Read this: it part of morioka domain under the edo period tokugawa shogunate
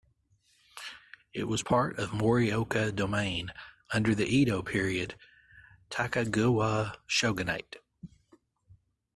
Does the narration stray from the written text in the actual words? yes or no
yes